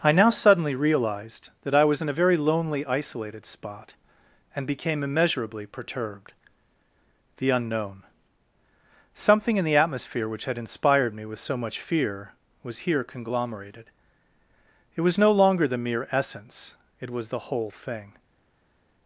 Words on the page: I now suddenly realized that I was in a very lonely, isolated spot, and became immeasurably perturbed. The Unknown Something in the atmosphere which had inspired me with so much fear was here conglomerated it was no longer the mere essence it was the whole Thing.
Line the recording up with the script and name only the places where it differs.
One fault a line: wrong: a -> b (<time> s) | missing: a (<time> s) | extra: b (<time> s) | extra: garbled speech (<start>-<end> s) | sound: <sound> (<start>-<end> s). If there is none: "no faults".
no faults